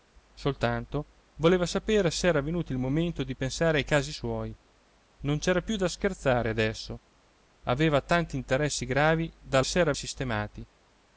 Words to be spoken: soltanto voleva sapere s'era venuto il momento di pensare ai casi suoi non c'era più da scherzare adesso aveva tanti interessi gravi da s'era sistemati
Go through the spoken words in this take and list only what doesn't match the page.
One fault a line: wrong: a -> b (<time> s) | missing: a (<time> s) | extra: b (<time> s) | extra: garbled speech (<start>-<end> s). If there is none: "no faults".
no faults